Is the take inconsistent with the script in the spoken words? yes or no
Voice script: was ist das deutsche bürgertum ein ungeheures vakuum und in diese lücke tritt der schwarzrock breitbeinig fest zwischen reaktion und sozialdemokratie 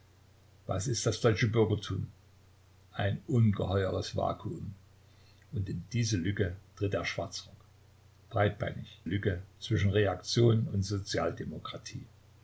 yes